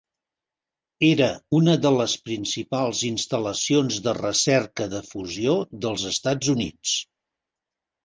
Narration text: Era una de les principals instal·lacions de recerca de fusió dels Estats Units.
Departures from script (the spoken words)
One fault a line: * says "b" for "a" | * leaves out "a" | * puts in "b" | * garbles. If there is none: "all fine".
all fine